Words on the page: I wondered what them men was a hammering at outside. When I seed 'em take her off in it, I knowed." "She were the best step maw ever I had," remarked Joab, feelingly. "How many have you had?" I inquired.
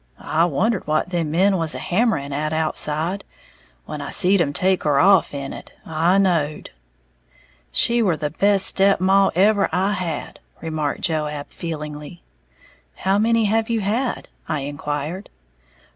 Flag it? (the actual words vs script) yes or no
no